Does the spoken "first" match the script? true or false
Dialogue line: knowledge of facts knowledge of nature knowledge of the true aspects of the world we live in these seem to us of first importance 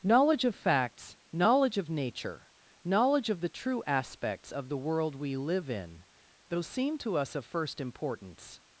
true